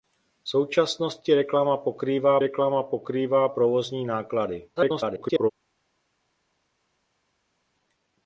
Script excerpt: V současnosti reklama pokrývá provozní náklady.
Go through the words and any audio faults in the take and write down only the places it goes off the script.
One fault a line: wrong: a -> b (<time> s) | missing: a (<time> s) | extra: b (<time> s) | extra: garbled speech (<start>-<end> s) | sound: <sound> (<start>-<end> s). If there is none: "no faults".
extra: reklama pokrývá (2.4 s)
extra: garbled speech (4.8-5.5 s)